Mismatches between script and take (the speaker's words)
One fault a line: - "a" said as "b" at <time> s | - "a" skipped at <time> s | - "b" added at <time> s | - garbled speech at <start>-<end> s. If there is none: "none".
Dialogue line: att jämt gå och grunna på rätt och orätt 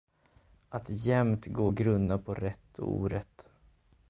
none